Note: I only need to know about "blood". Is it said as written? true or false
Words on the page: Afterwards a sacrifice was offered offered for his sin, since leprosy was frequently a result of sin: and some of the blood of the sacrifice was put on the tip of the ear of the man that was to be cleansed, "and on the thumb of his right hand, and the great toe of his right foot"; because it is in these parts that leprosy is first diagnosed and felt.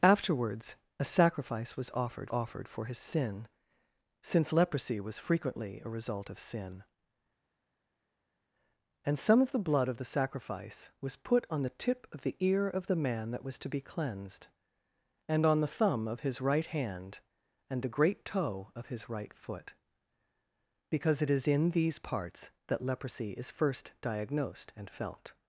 true